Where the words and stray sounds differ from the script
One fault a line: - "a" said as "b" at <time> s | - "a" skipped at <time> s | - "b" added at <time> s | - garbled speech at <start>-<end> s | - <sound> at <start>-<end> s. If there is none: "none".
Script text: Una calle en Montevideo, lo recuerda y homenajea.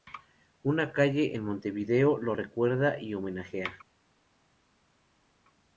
none